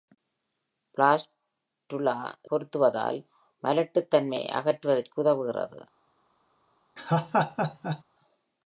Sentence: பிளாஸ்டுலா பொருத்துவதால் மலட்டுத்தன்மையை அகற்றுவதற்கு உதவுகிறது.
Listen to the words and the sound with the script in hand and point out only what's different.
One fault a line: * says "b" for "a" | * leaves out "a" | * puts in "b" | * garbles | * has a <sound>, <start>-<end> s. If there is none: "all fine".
* has a laugh, 7.0-8.0 s